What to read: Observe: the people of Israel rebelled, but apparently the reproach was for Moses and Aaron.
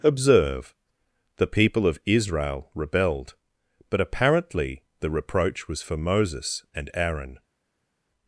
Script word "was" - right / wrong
right